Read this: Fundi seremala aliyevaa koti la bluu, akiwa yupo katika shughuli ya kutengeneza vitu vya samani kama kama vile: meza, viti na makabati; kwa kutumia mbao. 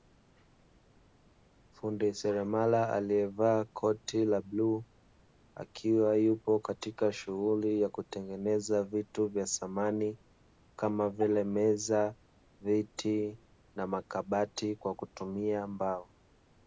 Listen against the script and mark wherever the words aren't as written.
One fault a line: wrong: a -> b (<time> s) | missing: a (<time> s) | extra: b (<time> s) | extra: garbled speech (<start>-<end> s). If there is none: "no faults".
missing: kama (11.1 s)